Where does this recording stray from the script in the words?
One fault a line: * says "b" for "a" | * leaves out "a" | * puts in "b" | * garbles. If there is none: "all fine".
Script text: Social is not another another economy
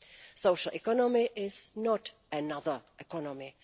* puts in "economy"
* leaves out "another"